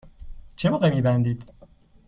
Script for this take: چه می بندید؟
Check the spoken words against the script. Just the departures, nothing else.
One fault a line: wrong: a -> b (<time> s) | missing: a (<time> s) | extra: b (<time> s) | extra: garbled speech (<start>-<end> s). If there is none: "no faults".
extra: موقع (0.7 s)